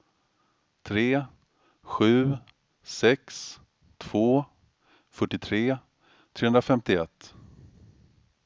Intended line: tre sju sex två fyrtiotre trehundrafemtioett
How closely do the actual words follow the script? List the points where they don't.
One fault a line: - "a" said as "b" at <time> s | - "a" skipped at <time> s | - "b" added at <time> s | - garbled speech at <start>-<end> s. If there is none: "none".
none